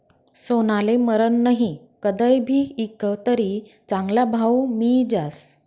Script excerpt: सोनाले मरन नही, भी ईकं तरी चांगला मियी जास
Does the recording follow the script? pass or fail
fail